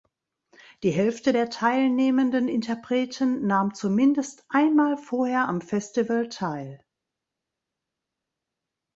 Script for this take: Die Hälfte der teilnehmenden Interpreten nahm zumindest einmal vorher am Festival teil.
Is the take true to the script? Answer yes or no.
yes